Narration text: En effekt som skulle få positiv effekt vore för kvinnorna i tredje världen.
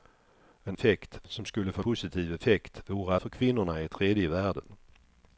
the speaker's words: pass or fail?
pass